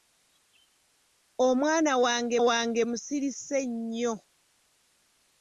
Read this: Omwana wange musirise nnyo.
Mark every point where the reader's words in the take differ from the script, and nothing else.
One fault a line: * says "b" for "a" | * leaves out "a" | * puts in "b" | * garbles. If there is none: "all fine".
* puts in "wange"